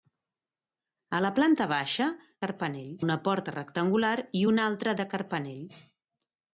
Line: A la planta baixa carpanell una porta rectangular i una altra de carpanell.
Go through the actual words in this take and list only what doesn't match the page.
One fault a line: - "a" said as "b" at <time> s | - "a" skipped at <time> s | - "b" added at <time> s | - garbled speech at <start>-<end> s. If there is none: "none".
none